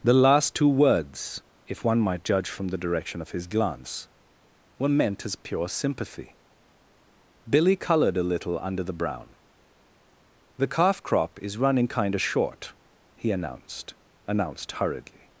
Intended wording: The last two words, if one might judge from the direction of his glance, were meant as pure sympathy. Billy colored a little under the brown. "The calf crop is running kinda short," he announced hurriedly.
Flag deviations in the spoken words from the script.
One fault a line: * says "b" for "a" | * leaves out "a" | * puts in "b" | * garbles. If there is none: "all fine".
* puts in "announced"